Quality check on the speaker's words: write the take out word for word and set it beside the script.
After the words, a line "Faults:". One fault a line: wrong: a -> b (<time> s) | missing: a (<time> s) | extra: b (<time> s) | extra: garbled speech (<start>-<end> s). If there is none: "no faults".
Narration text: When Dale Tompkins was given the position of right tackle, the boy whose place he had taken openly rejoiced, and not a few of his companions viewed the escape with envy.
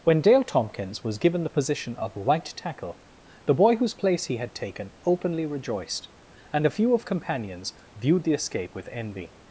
When Dale Tompkins was given the position of right tackle, the boy whose place he had taken openly rejoiced, and a few of companions viewed the escape with envy.
Faults:
missing: not (6.7 s)
missing: his (7.0 s)